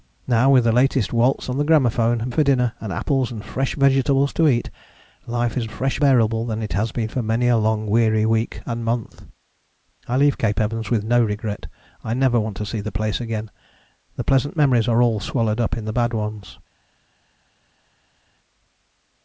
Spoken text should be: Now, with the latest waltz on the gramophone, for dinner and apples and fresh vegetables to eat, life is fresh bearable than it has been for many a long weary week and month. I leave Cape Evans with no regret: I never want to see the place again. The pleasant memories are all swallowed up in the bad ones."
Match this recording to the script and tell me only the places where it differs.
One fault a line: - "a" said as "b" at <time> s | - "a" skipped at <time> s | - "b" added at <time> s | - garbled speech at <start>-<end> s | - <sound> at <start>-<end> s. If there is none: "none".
none